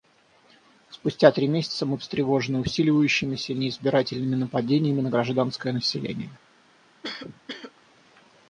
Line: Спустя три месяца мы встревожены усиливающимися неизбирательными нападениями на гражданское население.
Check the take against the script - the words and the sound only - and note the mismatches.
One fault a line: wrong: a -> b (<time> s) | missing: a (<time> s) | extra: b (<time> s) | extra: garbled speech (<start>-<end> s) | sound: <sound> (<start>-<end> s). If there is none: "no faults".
sound: cough (7.0-7.7 s)